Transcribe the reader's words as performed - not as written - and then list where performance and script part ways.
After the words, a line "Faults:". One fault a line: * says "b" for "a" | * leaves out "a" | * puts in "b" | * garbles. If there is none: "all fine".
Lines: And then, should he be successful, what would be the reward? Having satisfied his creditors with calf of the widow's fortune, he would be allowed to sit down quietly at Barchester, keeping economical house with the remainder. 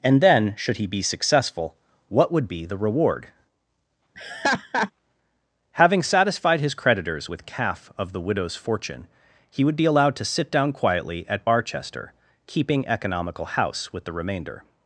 And then, should he be successful, what would be the reward? Having satisfied his creditors with calf of the widow's fortune, he would be allowed to sit down quietly at Barchester, keeping economical house with the remainder.
Faults:
all fine